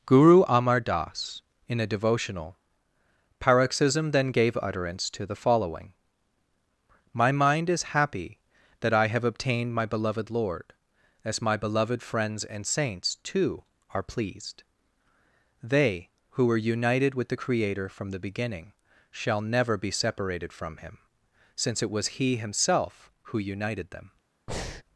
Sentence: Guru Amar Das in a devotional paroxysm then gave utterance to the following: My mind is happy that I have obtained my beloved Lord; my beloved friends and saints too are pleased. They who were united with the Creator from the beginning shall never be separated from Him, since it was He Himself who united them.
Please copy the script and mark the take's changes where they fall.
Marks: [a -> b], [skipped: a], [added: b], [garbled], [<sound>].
Guru Amar Das in a devotional paroxysm then gave utterance to the following: My mind is happy that I have obtained my beloved Lord; [added: as] my beloved friends and saints too are pleased. They who were united with the Creator from the beginning shall never be separated from Him, since it was He Himself who united them. [breath]